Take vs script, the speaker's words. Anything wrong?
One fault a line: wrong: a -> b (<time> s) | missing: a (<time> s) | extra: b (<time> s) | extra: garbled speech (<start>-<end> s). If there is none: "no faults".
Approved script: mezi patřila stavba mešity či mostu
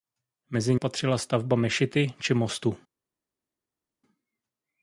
no faults